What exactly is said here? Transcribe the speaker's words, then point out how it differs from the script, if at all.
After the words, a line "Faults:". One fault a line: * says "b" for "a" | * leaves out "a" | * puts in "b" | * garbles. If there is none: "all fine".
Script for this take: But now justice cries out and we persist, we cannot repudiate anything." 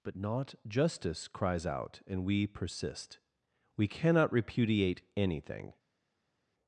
But not justice cries out and we persist, we cannot repudiate anything."
Faults:
* says "not" for "now"